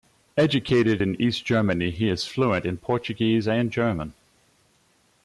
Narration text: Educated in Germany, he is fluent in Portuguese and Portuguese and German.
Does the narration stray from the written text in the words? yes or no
yes